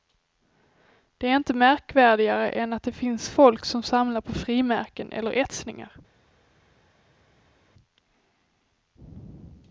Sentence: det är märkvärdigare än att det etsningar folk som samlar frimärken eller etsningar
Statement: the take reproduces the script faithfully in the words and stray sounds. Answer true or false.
false